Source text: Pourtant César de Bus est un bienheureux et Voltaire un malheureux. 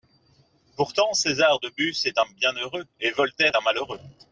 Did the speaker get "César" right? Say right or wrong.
right